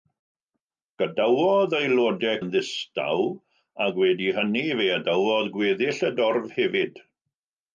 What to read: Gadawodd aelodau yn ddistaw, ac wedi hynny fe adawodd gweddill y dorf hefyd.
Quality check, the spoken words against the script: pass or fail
pass